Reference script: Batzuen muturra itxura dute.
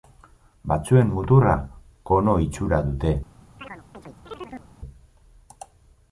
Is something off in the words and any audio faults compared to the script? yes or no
yes